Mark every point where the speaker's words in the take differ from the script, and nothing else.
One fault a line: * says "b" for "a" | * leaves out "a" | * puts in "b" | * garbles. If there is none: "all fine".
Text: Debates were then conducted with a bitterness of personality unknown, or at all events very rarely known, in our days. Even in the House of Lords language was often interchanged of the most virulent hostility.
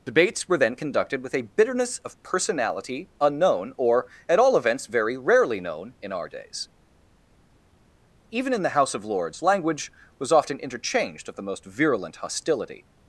all fine